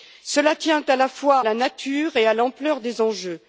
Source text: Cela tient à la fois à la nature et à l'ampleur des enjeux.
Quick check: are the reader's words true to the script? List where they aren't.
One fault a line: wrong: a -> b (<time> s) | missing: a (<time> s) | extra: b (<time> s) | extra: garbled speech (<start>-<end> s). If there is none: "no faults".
missing: à (1.4 s)